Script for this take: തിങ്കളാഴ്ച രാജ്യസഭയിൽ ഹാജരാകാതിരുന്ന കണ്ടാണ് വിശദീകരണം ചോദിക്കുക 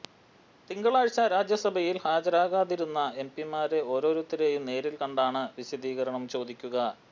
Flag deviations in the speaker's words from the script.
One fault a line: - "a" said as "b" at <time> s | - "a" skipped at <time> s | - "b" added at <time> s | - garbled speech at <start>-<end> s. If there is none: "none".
- "എംപിമാരെ ഓരോരുത്തരെയും നേരിൽ" added at 3.2 s